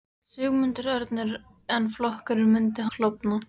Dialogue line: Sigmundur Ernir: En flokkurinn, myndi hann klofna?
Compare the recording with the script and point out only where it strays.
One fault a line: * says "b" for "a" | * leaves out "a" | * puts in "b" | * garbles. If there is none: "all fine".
* leaves out "hann"